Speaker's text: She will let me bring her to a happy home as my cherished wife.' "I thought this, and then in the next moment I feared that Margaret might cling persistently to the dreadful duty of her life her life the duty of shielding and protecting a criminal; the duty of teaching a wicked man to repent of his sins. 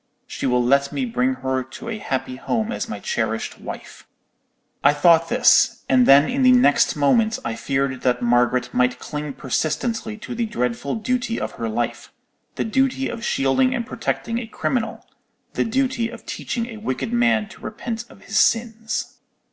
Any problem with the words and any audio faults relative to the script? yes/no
yes